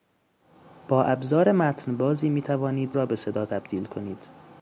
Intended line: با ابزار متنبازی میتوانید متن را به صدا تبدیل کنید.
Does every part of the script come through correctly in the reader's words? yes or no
no